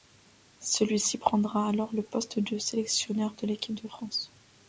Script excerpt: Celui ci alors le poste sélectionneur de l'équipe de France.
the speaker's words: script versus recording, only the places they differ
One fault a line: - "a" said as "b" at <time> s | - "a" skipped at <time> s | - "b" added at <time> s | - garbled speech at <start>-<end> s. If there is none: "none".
- "prendra" added at 1.2 s
- "de" added at 2.4 s